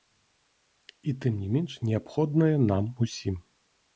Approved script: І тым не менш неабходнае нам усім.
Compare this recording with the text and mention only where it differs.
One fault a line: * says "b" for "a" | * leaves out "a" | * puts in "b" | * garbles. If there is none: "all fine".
all fine